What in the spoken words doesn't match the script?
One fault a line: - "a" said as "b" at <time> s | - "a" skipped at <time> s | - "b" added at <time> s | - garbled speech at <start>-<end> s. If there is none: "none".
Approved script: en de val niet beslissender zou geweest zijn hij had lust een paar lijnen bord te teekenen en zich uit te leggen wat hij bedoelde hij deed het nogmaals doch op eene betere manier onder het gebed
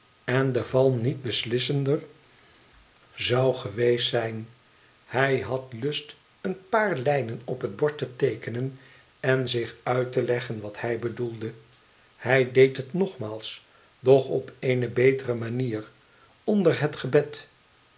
- "op het" added at 7.5 s